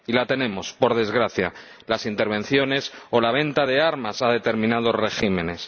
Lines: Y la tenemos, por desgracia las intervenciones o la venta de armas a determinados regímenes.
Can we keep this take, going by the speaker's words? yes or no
yes